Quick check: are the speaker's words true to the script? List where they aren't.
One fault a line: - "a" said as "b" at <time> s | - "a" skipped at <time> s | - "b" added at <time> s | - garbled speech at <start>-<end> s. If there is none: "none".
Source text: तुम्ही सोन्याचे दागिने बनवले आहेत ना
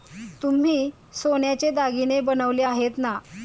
none